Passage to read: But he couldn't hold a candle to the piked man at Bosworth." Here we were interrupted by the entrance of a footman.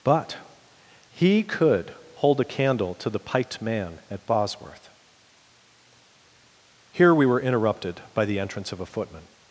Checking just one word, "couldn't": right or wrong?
wrong